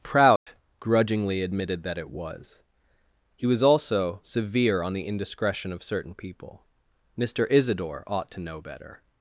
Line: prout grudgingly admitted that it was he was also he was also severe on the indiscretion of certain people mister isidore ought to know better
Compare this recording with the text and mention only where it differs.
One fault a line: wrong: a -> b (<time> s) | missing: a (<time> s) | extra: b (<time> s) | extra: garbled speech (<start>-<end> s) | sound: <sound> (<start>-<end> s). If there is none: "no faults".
sound: dropout (0.4-0.5 s)
missing: he was also (4.2 s)